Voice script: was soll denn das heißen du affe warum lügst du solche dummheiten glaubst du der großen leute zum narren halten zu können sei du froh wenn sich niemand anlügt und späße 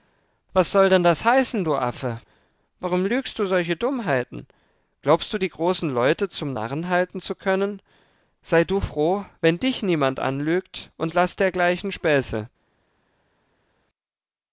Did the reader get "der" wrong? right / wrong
wrong